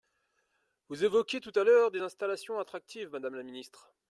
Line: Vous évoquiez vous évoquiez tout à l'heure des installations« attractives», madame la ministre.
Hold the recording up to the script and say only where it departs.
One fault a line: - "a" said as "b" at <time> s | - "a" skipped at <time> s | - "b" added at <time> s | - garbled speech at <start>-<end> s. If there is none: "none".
- "vous évoquiez" skipped at 1.4 s